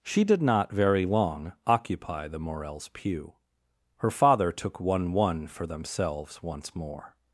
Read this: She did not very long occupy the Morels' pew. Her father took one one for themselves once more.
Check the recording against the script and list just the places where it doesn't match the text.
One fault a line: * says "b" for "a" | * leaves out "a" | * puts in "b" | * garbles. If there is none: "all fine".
all fine